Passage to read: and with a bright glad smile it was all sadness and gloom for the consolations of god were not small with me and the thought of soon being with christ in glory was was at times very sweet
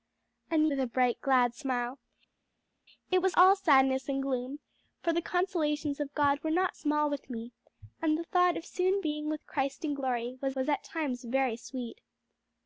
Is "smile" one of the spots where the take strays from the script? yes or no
no